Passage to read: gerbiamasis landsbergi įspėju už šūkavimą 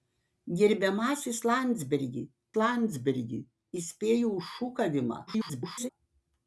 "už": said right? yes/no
yes